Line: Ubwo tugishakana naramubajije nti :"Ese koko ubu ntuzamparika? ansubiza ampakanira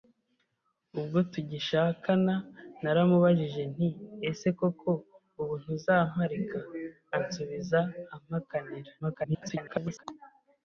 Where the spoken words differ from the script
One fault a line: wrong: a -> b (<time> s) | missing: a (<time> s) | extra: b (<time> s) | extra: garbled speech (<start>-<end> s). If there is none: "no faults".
extra: garbled speech (9.0-10.0 s)